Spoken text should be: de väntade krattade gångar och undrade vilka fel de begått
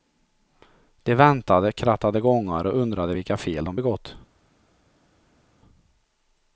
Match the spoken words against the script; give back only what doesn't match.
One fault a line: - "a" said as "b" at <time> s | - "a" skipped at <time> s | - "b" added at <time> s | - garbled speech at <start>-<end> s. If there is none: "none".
none